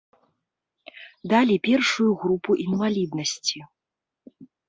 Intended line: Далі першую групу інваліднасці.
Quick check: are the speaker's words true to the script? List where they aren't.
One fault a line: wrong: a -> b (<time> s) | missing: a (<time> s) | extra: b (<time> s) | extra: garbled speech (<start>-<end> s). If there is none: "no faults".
no faults